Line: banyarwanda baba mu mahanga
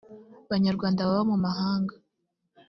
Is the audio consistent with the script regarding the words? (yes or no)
yes